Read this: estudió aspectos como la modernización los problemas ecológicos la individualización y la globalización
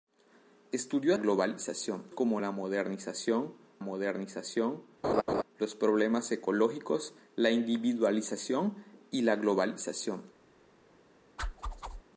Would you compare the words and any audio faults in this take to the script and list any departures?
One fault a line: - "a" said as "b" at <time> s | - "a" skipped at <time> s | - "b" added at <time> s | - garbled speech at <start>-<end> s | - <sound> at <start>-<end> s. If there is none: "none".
- "aspectos" said as "globalización" at 1.2 s
- "modernización" added at 3.8 s
- laugh at 5.0-5.4 s
- whoosh at 11.4-12.0 s